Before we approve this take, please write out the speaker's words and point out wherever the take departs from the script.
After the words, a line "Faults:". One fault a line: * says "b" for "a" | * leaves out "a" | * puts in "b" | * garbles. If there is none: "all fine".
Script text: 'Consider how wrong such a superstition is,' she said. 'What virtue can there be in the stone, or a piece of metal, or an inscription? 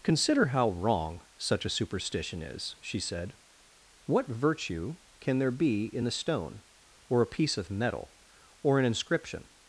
'Consider how wrong such a superstition is,' she said. 'What virtue can there be in the stone, or a piece of metal, or an inscription?
Faults:
all fine